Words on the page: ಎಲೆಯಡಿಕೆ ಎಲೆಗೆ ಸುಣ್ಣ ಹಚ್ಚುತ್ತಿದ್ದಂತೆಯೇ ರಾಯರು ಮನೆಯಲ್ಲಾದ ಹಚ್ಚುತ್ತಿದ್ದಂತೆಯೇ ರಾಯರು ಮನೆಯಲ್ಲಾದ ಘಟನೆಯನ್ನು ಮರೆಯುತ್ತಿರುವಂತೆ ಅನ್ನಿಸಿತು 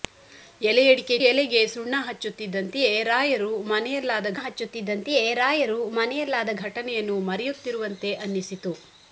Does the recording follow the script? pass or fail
pass